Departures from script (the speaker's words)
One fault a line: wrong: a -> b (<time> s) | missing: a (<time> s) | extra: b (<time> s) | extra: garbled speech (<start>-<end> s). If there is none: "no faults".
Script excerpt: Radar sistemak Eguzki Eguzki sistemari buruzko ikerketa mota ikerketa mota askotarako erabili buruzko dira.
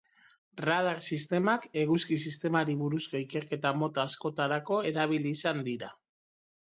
missing: Eguzki (2.2 s)
missing: ikerketa mota (4.0 s)
wrong: buruzko -> izan (5.4 s)